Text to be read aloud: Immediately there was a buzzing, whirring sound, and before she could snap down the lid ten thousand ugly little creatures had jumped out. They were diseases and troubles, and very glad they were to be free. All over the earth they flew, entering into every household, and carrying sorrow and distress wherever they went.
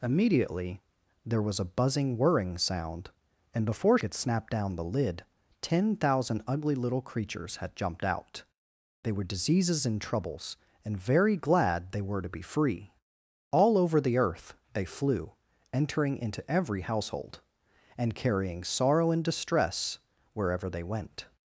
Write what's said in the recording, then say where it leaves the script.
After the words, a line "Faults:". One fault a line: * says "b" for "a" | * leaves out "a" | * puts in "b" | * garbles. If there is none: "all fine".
Immediately there was a buzzing, whirring sound, and before could snap down the lid ten thousand ugly little creatures had jumped out. They were diseases and troubles, and very glad they were to be free. All over the earth they flew, entering into every household, and carrying sorrow and distress wherever they went.
Faults:
* leaves out "she"